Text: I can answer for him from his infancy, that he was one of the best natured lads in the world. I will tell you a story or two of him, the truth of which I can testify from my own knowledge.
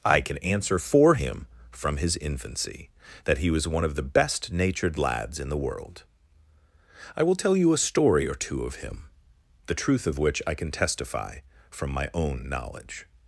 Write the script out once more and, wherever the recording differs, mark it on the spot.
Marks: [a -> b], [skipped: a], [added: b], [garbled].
I can answer for him from his infancy, that he was one of the best natured lads in the world. I will tell you a story or two of him, the truth of which I can testify from my own knowledge.